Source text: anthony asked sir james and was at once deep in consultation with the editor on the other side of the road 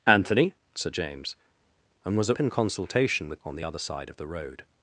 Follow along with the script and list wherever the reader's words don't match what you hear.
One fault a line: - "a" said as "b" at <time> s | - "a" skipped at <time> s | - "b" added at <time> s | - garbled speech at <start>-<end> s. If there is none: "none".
- "asked" skipped at 0.6 s
- "once deep" skipped at 2.4 s
- "the editor" skipped at 3.4 s